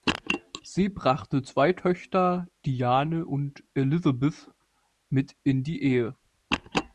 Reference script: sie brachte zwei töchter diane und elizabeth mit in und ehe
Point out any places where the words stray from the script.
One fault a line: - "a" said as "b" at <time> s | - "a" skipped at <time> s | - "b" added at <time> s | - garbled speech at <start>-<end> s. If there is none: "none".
- "und" said as "die" at 5.6 s